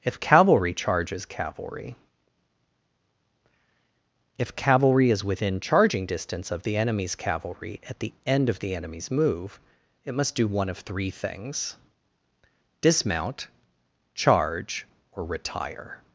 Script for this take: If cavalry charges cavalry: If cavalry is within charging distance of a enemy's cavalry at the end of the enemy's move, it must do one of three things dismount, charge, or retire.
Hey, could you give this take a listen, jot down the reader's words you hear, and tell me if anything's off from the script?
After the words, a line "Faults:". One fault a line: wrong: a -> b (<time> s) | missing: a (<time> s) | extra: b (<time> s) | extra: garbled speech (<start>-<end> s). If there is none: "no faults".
If cavalry charges cavalry: If cavalry is within charging distance of the enemy's cavalry at the end of the enemy's move, it must do one of three things dismount, charge, or retire.
Faults:
wrong: a -> the (6.6 s)